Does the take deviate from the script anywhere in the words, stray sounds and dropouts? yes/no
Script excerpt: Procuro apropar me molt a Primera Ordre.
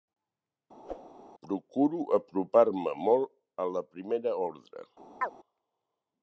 yes